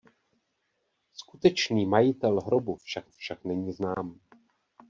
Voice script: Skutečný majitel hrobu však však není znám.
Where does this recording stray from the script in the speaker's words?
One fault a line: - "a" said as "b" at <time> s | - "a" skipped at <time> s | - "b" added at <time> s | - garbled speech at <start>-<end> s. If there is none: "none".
none